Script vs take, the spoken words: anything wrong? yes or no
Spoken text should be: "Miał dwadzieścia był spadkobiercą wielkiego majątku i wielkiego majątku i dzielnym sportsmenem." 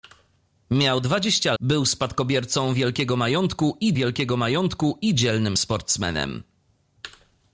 no